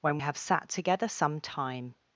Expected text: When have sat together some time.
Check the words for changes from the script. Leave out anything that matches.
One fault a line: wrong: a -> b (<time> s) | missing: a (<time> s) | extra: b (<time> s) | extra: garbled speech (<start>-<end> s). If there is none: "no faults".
no faults